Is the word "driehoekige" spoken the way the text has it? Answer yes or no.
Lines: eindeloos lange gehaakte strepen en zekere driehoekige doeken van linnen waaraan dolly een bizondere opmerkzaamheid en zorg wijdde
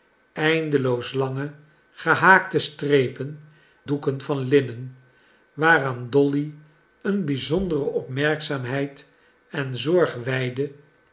no